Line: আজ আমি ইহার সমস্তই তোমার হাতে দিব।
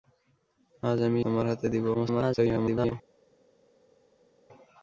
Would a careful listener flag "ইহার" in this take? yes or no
yes